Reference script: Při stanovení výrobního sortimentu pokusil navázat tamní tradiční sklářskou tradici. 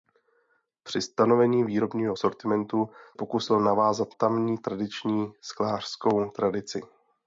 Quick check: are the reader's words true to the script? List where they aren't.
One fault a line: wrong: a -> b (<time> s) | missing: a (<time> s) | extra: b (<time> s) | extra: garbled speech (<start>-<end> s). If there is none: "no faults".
no faults